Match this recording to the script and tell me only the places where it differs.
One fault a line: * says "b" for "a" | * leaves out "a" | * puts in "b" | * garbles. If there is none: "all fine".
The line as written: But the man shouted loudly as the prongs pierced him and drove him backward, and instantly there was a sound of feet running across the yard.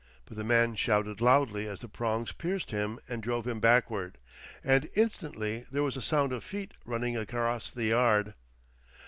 all fine